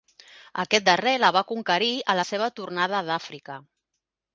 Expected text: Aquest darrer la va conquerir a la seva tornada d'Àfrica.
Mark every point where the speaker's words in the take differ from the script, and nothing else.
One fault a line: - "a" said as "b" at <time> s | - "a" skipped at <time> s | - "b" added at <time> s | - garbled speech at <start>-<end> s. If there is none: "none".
none